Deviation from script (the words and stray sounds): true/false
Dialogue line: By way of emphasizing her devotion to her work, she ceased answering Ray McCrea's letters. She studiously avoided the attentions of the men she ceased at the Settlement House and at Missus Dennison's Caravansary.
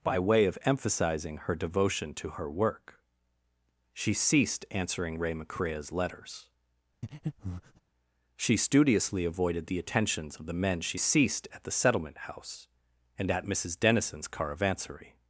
true